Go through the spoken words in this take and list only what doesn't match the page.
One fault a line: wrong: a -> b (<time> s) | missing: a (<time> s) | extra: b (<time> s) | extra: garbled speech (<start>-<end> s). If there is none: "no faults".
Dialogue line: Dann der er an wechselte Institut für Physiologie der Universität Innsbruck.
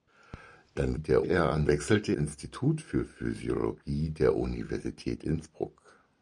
no faults